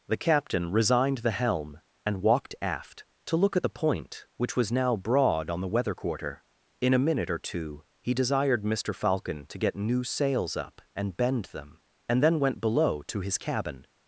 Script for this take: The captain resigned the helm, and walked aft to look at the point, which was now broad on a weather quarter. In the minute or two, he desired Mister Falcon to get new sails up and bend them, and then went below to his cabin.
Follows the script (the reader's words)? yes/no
no